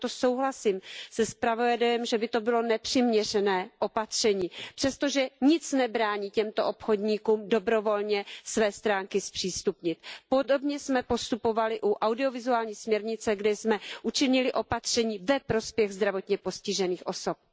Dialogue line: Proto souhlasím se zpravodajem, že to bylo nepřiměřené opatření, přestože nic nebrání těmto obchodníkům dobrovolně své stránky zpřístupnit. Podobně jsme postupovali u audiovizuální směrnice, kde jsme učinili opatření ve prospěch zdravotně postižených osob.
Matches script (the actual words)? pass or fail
fail